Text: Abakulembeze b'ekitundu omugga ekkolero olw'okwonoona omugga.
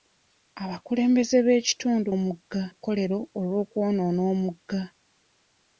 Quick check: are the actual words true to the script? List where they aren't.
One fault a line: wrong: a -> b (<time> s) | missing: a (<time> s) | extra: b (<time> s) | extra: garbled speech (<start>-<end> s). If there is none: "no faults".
no faults